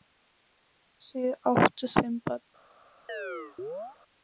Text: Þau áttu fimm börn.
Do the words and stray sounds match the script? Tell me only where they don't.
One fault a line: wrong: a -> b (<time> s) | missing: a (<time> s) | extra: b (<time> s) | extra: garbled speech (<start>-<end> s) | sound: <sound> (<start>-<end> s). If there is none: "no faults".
sound: chirp (3.1-4.0 s)